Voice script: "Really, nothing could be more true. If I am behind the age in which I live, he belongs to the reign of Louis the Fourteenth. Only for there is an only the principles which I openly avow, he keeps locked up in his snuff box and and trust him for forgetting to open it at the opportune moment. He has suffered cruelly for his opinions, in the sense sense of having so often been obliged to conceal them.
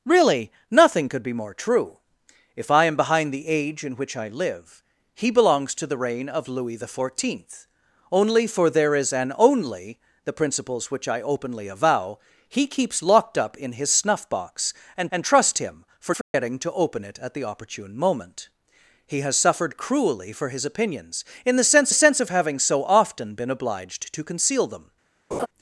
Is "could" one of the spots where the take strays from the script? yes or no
no